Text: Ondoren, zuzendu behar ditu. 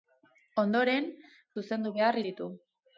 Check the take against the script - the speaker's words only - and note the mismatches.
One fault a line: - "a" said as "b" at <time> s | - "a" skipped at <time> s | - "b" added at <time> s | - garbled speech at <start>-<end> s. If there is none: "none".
none